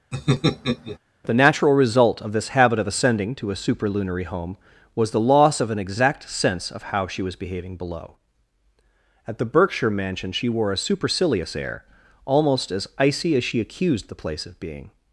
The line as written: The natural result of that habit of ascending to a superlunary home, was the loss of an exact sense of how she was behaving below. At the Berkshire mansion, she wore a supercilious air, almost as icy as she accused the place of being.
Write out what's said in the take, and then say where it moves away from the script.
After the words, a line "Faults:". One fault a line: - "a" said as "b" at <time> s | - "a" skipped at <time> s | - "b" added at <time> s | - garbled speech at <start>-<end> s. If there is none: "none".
The natural result of this habit of ascending to a superlunary home, was the loss of an exact sense of how she was behaving below. At the Berkshire mansion, she wore a supercilious air, almost as icy as she accused the place of being.
Faults:
- "that" said as "this" at 2.3 s